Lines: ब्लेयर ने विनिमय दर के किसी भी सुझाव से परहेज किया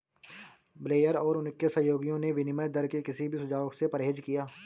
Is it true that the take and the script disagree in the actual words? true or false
true